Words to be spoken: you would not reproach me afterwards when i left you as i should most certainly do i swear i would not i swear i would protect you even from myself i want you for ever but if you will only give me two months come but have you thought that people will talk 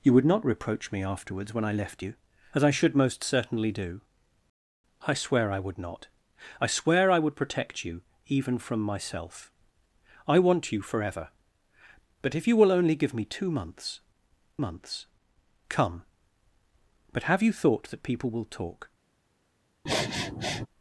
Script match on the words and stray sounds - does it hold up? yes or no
no